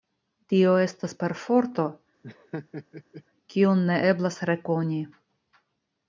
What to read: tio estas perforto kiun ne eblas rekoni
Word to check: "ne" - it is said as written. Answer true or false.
true